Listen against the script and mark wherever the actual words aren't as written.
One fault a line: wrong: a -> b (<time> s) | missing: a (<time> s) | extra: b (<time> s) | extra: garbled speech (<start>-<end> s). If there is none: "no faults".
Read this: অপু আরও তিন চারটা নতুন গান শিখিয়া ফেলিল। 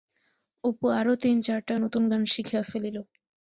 no faults